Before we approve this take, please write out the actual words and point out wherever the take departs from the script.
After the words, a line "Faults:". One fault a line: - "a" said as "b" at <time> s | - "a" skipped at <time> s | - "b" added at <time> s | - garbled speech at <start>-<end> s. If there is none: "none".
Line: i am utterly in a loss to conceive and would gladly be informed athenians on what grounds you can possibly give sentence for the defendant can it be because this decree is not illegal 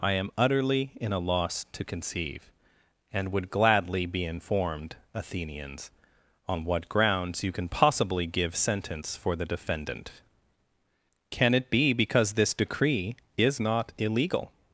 i am utterly in a loss to conceive and would gladly be informed athenians on what grounds you can possibly give sentence for the defendant can it be because this decree is not illegal
Faults:
none